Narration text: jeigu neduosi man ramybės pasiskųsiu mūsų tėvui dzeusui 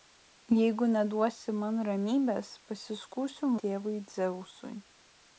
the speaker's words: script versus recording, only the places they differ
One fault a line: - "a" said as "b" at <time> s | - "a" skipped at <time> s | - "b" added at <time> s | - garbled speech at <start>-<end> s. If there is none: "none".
- "mūsų" skipped at 3.5 s